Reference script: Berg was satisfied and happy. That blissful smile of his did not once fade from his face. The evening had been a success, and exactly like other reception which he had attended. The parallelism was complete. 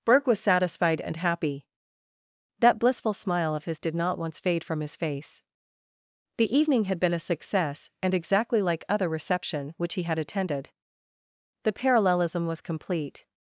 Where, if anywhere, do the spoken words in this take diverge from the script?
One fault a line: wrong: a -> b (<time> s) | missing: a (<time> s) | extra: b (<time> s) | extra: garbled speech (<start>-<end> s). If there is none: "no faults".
no faults